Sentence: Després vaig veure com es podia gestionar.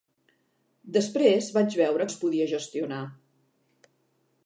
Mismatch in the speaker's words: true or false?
true